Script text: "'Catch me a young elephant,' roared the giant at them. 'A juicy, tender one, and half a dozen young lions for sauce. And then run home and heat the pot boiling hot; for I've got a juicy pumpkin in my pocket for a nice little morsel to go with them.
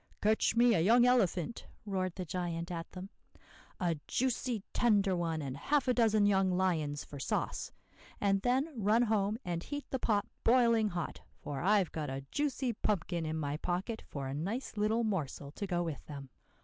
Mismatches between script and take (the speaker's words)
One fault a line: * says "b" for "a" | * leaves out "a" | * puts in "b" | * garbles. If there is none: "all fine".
all fine